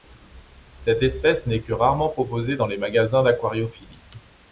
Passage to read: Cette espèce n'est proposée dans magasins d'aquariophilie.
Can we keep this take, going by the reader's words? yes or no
no